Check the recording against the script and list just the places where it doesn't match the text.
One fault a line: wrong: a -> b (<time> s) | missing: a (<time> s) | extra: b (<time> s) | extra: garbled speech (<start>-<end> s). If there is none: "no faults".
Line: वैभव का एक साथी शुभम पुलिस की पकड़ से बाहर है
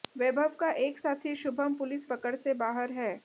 missing: की (2.0 s)